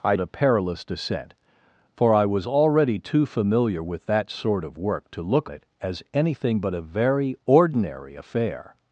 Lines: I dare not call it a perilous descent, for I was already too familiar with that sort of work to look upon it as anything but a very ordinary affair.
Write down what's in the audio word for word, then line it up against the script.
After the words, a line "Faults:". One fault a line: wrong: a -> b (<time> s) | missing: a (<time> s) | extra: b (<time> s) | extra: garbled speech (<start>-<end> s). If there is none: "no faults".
I it a perilous descent, for I was already too familiar with that sort of work to look it as anything but a very ordinary affair.
Faults:
missing: dare not call (0.1 s)
missing: upon (5.5 s)